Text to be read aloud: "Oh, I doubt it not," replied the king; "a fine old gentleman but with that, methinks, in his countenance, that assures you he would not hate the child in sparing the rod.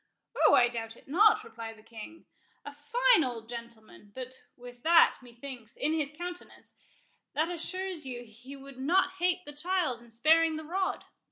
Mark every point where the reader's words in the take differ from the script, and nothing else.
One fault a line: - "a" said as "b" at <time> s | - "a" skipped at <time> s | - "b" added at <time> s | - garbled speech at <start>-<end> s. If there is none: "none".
none